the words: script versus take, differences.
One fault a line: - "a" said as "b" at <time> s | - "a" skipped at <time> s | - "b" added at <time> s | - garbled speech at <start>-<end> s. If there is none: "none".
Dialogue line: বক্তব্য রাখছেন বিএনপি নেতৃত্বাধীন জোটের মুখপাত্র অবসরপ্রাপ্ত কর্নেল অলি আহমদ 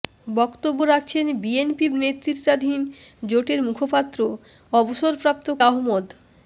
- "কর্নেল অলি" skipped at 5.5 s